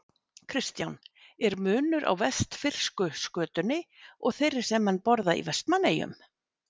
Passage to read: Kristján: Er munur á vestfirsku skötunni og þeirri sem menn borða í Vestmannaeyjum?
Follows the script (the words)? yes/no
yes